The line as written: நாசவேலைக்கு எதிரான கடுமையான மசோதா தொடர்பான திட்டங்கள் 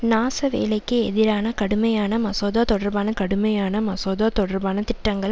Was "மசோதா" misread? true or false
false